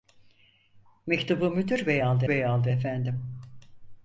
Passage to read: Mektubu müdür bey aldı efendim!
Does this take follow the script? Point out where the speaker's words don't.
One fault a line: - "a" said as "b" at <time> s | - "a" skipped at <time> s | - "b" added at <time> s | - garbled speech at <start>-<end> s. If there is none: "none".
- "bey aldı" added at 2.3 s